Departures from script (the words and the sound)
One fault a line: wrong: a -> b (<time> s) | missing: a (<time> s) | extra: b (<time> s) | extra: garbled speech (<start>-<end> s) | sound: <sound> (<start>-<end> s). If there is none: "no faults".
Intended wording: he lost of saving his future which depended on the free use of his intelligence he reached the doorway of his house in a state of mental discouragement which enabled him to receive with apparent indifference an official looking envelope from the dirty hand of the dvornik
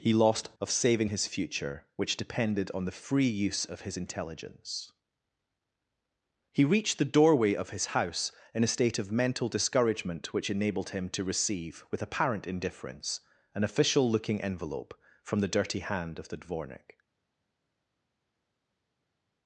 no faults